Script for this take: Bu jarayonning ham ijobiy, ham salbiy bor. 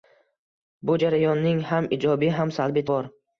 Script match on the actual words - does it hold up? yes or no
yes